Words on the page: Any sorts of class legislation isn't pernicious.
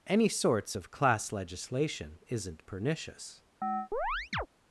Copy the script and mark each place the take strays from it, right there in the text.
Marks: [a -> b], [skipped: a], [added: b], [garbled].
Any sorts of class legislation isn't pernicious.